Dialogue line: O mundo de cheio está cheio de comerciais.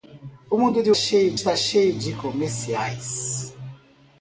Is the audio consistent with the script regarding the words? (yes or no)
yes